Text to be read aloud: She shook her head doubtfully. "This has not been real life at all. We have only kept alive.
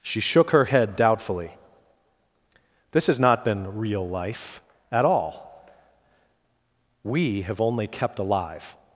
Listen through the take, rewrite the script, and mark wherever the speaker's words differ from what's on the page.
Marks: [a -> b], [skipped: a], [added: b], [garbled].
She shook her head doubtfully. "This has not been real life at all. We have only kept alive.